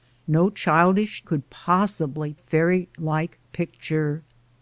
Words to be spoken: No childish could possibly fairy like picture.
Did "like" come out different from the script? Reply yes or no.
no